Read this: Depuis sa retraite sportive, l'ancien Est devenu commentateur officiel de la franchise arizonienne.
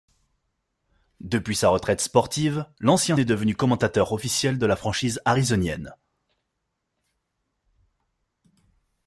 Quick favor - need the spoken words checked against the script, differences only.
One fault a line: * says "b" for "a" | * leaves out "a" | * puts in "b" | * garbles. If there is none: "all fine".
all fine